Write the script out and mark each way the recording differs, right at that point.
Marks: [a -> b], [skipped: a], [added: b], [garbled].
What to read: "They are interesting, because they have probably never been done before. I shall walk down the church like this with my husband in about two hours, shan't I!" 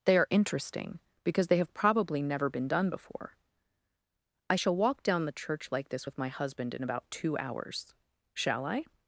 "They are interesting, because they have probably never been done before. I shall walk down the church like this with my husband in about two hours, [shan't -> shall] I!"